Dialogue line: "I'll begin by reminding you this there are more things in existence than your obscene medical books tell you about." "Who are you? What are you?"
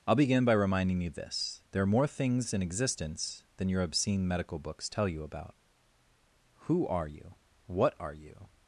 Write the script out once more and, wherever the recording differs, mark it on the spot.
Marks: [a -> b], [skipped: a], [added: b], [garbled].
"I'll begin by reminding you this there are more things in existence than your obscene medical books tell you about." "Who are you? What are you?"